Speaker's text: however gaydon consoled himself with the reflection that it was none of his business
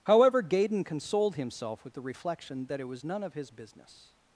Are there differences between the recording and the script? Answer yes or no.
no